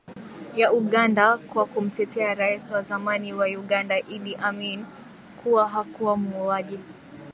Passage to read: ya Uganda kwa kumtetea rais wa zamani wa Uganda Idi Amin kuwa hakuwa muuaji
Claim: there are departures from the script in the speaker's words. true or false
false